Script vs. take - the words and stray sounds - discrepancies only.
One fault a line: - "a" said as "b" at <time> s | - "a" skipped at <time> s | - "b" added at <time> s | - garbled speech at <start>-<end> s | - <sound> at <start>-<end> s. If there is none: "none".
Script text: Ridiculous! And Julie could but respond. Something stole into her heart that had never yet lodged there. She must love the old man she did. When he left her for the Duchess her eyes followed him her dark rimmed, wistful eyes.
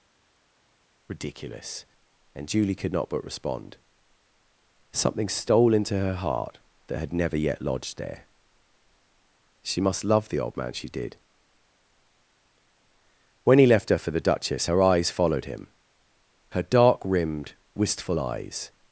- "not" added at 2.9 s